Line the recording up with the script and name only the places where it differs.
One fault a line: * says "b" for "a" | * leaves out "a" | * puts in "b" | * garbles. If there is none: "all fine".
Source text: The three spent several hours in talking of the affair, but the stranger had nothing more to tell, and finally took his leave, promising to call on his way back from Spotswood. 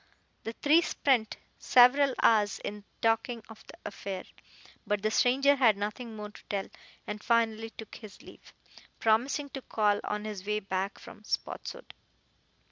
all fine